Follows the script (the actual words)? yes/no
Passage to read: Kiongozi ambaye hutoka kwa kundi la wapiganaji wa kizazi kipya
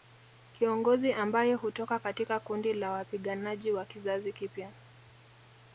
no